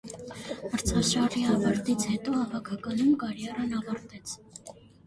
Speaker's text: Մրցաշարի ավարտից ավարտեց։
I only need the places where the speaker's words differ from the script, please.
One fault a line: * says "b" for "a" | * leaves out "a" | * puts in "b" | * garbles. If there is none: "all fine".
* puts in "հետո հավաքականում կարիերան"